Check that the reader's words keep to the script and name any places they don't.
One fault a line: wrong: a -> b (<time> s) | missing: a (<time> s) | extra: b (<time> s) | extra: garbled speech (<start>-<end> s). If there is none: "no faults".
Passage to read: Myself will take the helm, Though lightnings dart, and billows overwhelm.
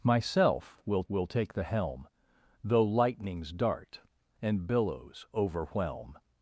extra: will (1.1 s)